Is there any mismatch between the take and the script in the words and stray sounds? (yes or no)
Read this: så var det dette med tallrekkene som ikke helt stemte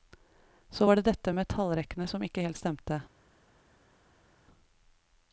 no